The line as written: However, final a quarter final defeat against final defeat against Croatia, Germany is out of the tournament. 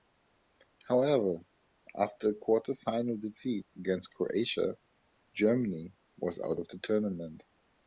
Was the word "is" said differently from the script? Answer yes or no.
yes